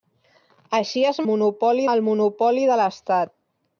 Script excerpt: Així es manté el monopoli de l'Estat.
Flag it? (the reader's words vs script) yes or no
yes